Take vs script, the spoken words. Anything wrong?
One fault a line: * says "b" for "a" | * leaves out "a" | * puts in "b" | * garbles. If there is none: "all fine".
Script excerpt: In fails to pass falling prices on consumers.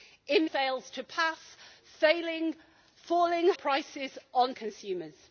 all fine